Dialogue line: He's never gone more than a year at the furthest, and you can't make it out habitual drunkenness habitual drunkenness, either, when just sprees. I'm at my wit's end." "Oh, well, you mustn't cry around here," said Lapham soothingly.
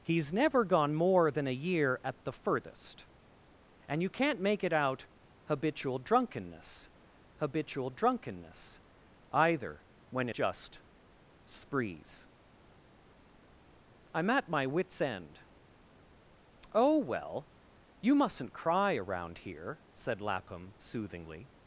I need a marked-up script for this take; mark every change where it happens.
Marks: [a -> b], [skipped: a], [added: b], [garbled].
He's never gone more than a year at the furthest, and you can't make it out habitual drunkenness habitual drunkenness, either, when just sprees. I'm at my wit's end." "Oh, well, you mustn't cry around here," said Lapham soothingly.